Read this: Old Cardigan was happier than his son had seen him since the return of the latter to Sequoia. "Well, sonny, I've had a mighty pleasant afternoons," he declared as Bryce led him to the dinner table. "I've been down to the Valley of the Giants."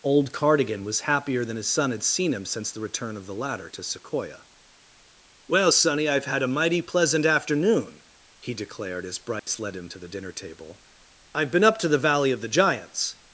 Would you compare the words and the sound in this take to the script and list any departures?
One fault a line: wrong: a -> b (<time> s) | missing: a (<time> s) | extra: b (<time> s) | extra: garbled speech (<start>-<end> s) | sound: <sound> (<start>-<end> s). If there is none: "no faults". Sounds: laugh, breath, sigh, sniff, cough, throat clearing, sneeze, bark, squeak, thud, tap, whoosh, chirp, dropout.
wrong: afternoons -> afternoon (7.2 s)
sound: dropout (9.4-9.5 s)
wrong: down -> up (11.6 s)